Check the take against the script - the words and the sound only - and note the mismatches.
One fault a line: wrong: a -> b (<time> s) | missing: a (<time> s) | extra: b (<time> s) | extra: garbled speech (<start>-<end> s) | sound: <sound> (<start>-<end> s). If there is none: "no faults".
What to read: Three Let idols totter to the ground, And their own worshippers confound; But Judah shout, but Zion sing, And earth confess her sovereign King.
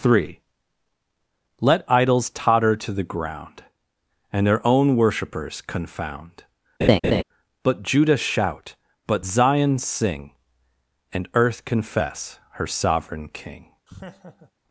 sound: laugh (6.8-7.2 s)
sound: laugh (13.9-14.5 s)